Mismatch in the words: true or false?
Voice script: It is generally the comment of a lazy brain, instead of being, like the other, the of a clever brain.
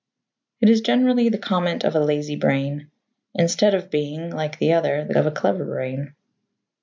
false